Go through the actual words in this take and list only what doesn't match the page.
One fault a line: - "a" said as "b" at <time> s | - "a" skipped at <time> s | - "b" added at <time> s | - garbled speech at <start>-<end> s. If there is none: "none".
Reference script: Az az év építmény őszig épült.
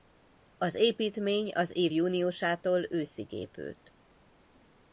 - "építmény" added at 0.8 s
- "építmény" said as "júniusától" at 1.9 s